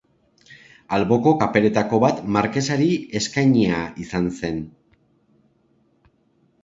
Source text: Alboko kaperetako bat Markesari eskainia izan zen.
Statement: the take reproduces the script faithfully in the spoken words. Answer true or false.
true